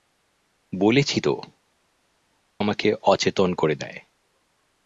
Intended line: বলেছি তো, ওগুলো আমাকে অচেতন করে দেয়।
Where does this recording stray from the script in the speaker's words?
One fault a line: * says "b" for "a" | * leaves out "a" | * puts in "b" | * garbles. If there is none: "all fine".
* leaves out "ওগুলো"